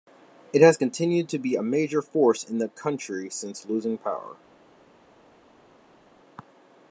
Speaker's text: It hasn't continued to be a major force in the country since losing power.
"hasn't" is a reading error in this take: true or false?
true